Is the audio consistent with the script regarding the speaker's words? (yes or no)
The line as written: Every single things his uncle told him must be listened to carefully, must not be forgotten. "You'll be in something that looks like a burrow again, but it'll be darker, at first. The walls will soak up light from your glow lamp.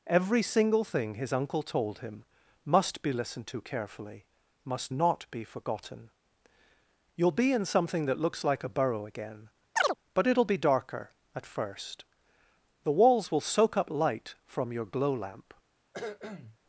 no